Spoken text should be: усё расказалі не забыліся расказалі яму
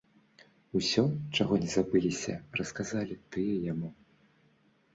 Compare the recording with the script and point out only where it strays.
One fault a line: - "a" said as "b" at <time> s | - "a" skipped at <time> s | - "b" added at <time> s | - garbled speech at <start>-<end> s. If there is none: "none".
- "расказалі" said as "чаго" at 1.4 s
- "тыя" added at 3.4 s